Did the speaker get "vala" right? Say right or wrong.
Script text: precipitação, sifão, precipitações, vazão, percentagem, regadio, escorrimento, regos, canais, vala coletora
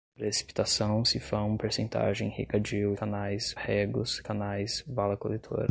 right